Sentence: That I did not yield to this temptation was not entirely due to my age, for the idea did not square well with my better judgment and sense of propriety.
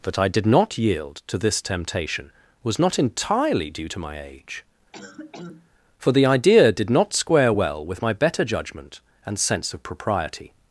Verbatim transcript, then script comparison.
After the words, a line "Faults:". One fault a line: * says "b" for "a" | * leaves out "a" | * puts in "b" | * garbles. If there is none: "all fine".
That I did not yield to this temptation was not entirely due to my age, for the idea did not square well with my better judgment and sense of propriety.
Faults:
all fine